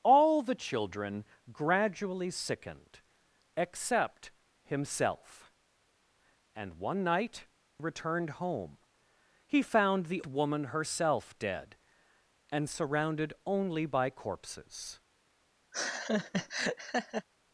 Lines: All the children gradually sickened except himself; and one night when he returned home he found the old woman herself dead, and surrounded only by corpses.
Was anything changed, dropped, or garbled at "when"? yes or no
yes